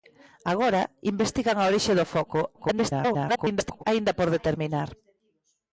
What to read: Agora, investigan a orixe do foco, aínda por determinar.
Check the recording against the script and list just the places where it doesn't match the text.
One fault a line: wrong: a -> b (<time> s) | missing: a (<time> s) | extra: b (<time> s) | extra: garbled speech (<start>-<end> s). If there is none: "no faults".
extra: garbled speech (2.5-3.8 s)